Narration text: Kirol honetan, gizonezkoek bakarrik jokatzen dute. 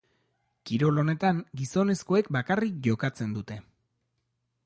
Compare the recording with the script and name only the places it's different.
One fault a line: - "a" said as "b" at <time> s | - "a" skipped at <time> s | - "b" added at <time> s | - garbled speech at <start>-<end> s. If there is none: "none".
none